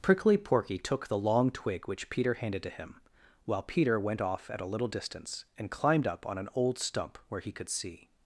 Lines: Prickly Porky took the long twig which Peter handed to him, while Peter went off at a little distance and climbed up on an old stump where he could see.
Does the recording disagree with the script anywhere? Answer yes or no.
no